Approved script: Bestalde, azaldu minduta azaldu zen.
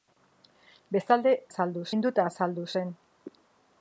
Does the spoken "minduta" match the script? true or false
true